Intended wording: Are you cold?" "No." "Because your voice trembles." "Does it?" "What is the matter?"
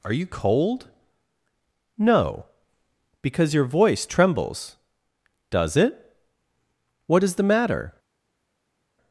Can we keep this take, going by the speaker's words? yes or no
yes